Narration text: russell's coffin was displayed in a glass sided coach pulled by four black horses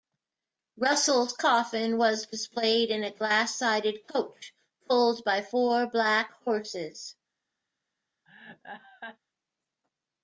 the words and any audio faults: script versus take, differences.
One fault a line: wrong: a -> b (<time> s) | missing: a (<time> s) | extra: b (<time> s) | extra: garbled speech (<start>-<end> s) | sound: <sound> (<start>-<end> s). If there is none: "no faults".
sound: laugh (8.3-9.2 s)